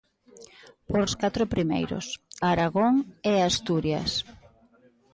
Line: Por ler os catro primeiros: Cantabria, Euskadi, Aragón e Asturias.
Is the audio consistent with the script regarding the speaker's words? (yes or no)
no